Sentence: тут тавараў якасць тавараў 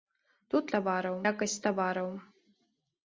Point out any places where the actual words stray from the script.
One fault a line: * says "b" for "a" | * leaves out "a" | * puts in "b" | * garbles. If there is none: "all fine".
all fine